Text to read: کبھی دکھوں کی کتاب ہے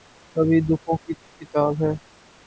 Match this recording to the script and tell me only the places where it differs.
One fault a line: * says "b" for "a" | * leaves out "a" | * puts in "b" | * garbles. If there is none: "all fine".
all fine